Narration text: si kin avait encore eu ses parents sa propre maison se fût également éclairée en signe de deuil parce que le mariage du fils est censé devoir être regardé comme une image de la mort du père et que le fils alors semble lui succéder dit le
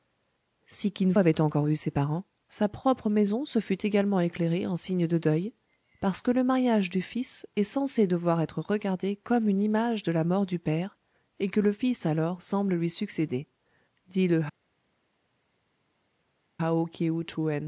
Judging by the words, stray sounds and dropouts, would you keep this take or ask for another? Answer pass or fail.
pass